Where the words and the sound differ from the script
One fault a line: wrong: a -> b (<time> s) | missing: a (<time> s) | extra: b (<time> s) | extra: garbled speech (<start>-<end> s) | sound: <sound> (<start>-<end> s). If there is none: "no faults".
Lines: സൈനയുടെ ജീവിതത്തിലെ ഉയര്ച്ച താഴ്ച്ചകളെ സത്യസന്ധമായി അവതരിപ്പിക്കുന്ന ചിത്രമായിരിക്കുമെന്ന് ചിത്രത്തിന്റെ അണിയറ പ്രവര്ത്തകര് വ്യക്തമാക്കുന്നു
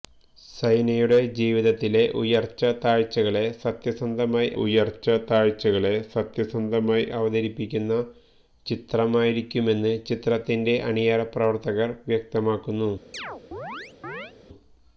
extra: ഉയര്ച്ച താഴ്ച്ചകളെ സത്യസന്ധമായി (4.6 s)
sound: chirp (13.1-14.3 s)